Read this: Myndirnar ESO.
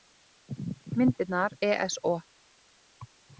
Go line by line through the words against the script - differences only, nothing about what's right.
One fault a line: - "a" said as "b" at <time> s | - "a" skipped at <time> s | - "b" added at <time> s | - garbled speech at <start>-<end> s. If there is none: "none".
none